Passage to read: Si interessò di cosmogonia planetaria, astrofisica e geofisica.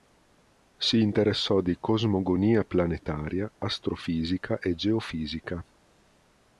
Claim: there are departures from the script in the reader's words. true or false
false